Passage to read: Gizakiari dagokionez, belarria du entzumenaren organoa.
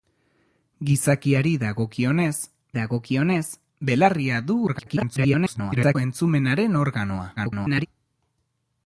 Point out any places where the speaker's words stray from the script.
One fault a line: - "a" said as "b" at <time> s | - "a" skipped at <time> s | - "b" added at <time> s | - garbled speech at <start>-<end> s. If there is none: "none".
- "dagokionez" added at 2.8 s
- garbled speech at 4.7-6.0 s
- garbled speech at 7.4-7.9 s